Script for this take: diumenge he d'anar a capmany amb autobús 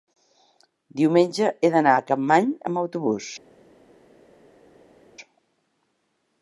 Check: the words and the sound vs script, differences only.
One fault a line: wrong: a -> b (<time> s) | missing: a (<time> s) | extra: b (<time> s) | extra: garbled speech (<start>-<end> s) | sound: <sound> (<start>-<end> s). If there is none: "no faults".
no faults